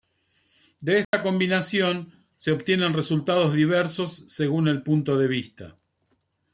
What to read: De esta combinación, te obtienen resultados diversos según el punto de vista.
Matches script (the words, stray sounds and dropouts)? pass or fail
fail